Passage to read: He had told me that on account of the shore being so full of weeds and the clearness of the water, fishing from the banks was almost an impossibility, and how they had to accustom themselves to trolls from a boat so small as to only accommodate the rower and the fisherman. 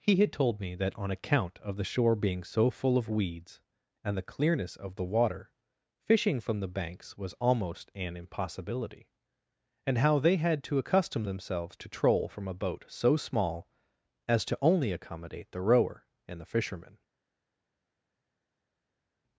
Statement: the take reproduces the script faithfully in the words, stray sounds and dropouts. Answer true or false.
false